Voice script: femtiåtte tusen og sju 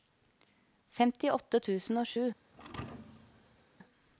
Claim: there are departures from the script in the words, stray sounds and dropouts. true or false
true